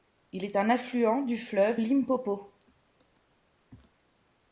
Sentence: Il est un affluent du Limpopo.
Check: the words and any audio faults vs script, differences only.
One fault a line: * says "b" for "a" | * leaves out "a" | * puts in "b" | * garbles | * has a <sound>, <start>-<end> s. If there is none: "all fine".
* puts in "fleuve"